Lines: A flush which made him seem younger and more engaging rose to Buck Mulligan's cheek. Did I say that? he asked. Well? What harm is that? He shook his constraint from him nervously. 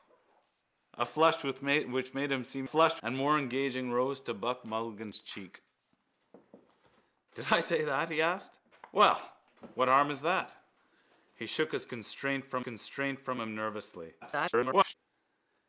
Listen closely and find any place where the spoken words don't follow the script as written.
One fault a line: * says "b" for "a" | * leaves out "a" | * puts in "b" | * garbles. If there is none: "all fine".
* says "flush" for "younger"
* puts in "constraint from"
* garbles